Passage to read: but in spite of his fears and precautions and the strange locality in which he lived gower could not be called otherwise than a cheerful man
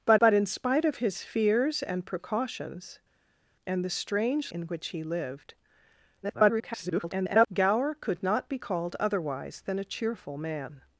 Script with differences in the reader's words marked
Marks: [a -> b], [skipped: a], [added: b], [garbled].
but [added: but] in spite of his fears and precautions and the strange [skipped: locality] in which he lived [garbled] gower could not be called otherwise than a cheerful man